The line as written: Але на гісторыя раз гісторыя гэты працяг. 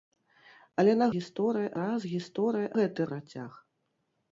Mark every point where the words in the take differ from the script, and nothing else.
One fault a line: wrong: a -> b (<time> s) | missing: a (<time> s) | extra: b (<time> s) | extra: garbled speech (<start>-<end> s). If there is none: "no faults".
no faults